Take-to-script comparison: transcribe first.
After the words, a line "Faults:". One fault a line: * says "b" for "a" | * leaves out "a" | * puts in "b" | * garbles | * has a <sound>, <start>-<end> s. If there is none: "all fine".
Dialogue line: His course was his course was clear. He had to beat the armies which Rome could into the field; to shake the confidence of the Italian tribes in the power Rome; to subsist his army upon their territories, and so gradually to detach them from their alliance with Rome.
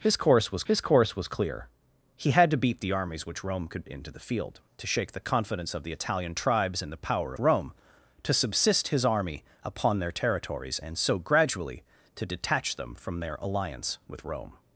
His course was his course was clear. He had to beat the armies which Rome could into the field; to shake the confidence of the Italian tribes in the power Rome; to subsist his army upon their territories, and so gradually to detach them from their alliance with Rome.
Faults:
all fine